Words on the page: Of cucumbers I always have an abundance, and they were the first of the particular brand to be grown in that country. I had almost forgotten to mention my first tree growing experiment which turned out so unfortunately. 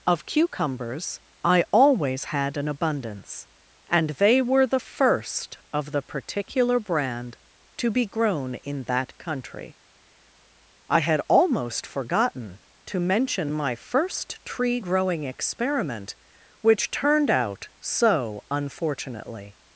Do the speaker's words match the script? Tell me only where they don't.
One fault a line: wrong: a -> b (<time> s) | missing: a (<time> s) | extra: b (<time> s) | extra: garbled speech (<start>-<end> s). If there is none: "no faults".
wrong: have -> had (2.2 s)